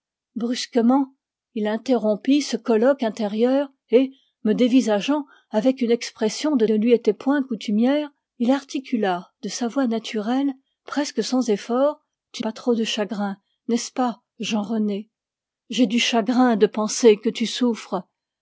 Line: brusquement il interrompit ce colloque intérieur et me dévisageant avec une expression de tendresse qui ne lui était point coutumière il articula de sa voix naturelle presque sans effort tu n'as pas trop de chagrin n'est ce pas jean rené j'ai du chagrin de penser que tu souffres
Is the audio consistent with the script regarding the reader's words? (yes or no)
no